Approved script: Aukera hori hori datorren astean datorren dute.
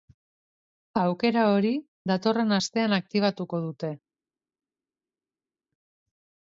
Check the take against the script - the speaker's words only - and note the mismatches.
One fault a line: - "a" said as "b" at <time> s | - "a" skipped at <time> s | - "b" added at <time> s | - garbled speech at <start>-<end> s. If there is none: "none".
- "hori" skipped at 1.7 s
- "datorren" said as "aktibatuko" at 3.0 s